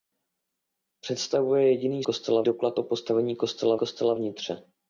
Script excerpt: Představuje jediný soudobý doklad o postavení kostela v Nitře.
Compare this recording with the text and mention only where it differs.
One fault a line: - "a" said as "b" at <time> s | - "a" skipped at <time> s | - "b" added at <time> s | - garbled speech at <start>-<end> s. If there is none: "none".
- "soudobý" said as "kostela" at 2.0 s
- "kostela" added at 3.8 s